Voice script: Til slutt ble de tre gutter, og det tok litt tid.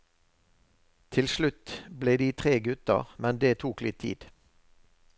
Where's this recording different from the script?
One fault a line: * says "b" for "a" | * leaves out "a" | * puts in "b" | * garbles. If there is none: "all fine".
* says "men" for "og"